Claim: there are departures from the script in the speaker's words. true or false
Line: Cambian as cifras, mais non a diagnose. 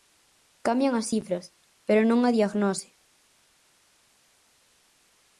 true